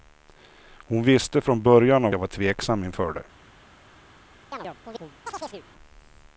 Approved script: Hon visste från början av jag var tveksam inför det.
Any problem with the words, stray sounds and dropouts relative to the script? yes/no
yes